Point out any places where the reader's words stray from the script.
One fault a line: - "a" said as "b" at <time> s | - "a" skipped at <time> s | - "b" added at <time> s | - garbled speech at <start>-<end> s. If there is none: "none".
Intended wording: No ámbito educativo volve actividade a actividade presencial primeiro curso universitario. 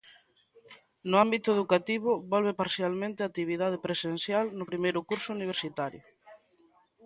- "actividade" said as "parcialmente" at 2.6 s
- "no" added at 4.6 s